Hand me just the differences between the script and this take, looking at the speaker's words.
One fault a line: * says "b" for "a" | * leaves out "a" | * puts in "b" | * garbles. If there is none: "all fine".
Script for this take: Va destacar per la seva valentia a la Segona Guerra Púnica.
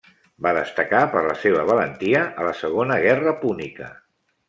all fine